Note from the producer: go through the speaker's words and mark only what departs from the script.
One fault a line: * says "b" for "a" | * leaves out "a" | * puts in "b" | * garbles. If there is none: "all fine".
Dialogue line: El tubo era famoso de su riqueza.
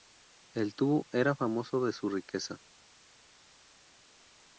all fine